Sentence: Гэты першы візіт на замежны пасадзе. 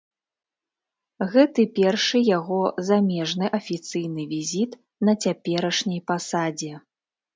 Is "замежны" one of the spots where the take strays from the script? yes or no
yes